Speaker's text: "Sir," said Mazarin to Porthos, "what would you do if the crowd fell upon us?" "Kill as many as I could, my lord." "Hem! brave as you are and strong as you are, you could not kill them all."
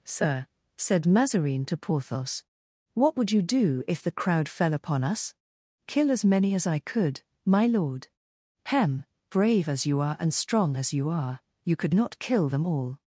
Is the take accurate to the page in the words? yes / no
yes